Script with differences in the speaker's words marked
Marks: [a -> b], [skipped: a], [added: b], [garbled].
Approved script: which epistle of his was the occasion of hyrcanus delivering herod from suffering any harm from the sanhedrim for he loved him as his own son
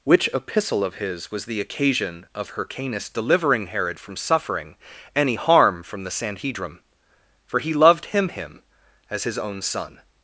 which epistle of his was the occasion of hyrcanus delivering herod from suffering any harm from the sanhedrim for he loved him [added: him] as his own son